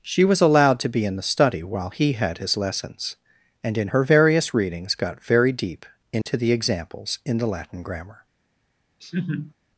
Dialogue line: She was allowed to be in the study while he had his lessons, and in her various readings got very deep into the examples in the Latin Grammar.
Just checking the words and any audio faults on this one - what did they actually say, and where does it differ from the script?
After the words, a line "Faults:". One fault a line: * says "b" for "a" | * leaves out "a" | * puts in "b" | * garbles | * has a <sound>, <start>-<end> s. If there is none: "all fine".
She was allowed to be in the study while he had his lessons, and in her various readings got very deep into the examples in the Latin Grammar.
Faults:
* has a dropout, 6.2-6.3 s
* has a laugh, 9.0-9.5 s